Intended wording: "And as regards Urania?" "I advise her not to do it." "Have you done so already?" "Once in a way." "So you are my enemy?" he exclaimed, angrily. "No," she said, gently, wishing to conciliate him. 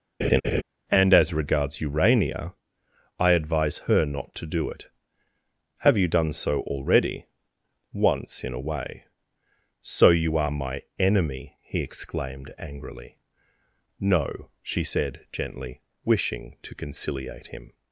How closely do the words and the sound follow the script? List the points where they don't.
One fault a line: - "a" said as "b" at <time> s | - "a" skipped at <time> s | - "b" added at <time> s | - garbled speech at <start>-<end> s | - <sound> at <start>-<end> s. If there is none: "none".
- laugh at 0.2-0.6 s